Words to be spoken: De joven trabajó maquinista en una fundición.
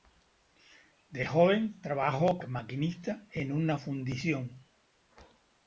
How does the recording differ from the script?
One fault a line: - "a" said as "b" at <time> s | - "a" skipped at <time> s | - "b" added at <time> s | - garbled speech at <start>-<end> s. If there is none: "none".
none